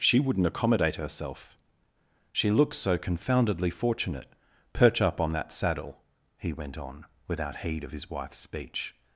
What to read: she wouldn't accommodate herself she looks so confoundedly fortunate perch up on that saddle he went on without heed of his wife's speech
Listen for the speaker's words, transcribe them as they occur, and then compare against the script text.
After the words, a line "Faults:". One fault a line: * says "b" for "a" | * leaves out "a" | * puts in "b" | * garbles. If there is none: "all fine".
she wouldn't accommodate herself she looks so confoundedly fortunate perch up on that saddle he went on without heed of his wife's speech
Faults:
all fine